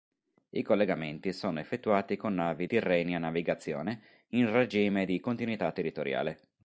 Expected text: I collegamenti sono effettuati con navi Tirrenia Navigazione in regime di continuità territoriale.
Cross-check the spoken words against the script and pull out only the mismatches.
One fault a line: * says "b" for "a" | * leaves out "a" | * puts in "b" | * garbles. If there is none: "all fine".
all fine